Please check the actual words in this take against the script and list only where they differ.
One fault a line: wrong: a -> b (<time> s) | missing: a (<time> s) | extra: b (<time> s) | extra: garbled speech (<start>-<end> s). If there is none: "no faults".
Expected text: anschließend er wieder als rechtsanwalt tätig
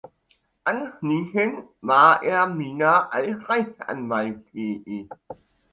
extra: war (1.8 s)